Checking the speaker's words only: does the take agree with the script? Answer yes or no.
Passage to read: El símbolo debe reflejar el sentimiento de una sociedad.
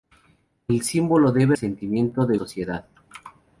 no